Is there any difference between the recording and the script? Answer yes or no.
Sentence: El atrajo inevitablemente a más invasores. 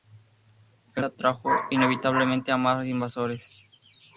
no